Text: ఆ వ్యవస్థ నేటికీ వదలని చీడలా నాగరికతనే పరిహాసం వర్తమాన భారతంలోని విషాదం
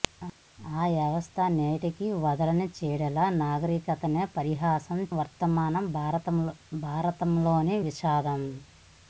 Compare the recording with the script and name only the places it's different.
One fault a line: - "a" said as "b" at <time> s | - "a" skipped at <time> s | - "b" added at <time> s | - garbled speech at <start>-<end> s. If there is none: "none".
none